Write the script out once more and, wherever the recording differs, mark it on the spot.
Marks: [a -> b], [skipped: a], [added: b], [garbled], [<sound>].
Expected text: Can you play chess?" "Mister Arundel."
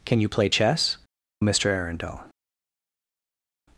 Can you play chess?" "Mister Arundel."